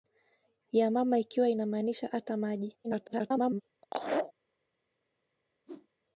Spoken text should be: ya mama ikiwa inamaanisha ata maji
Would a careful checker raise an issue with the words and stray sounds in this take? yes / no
yes